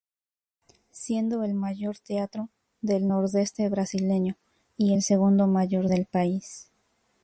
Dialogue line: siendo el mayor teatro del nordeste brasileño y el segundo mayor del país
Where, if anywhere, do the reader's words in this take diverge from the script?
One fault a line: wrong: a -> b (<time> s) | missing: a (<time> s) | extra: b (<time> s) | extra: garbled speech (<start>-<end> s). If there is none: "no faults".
no faults